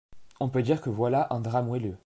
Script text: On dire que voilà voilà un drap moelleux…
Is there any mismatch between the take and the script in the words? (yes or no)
yes